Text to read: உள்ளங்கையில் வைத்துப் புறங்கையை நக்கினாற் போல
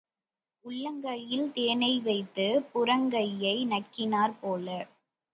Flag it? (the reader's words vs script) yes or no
yes